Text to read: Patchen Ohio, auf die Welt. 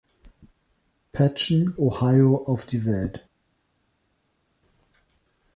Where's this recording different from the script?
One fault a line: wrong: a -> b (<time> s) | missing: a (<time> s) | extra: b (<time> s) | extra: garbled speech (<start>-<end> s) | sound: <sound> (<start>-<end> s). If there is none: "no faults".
no faults